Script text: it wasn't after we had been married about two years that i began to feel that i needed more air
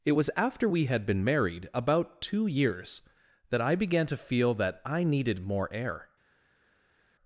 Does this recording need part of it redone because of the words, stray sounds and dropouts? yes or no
yes